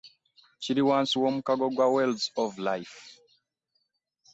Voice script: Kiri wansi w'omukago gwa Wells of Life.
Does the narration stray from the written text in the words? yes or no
no